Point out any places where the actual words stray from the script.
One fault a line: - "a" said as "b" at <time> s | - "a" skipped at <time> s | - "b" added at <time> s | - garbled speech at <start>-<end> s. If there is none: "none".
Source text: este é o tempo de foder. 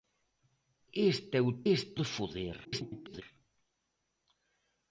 - "tempo" said as "este" at 1.7 s
- garbled speech at 2.6-3.2 s